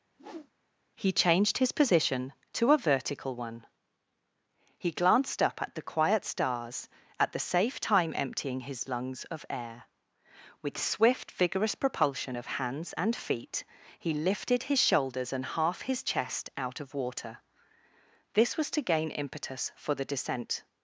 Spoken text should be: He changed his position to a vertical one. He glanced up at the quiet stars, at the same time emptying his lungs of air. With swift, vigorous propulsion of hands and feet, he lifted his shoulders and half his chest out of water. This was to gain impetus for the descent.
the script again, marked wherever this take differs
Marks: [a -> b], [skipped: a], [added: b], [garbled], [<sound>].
[whoosh] He changed his position to a vertical one. He glanced up at the quiet stars, at the [same -> safe] time emptying his lungs of air. With swift, vigorous propulsion of hands and feet, he lifted his shoulders and half his chest out of water. This was to gain impetus for the descent.